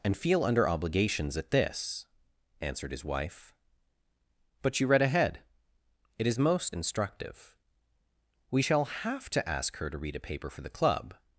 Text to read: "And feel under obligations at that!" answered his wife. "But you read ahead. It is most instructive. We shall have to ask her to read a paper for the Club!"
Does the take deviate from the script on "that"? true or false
true